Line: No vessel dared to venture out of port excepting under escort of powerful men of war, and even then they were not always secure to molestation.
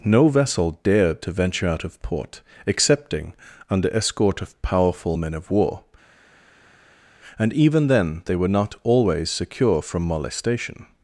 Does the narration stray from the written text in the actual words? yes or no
yes